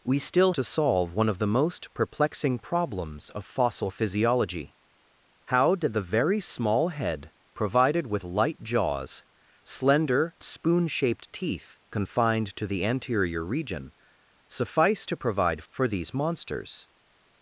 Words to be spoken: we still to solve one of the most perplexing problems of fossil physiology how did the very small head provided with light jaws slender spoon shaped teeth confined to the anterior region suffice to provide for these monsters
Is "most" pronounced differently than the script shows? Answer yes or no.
no